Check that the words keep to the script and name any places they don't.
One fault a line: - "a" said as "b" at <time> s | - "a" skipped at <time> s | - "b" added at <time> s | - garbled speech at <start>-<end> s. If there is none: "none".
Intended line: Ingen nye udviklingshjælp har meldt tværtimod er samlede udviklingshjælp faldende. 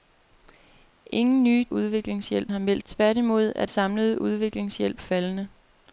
none